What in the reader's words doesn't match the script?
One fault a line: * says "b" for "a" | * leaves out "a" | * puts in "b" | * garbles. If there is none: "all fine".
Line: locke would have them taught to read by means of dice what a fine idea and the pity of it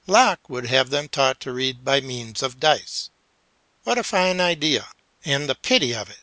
all fine